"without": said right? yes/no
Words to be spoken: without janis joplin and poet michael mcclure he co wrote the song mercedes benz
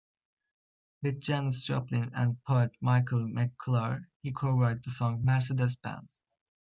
no